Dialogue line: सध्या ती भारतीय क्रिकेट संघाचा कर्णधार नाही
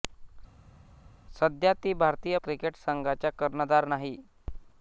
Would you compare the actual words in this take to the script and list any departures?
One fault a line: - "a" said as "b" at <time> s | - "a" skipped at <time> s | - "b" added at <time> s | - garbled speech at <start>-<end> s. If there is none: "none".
none